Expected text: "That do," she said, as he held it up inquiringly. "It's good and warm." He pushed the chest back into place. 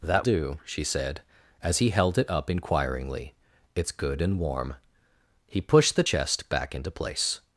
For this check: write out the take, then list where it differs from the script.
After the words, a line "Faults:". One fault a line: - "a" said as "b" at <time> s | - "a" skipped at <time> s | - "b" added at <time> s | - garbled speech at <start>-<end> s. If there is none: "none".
"That do," she said, as he held it up inquiringly. "It's good and warm." He pushed the chest back into place.
Faults:
none